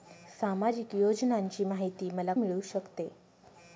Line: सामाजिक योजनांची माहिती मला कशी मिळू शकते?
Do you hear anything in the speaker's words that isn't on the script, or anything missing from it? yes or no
yes